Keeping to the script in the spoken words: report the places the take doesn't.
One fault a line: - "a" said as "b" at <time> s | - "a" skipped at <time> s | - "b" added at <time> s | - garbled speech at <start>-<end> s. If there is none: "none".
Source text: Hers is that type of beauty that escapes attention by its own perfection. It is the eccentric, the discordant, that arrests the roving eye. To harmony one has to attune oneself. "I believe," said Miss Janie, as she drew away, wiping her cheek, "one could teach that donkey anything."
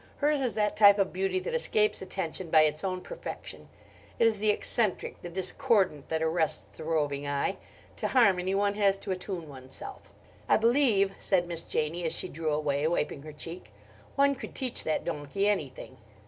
none